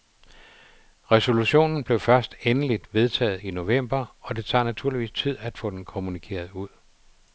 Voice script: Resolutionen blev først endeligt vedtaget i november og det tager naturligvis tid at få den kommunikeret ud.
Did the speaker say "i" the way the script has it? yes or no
yes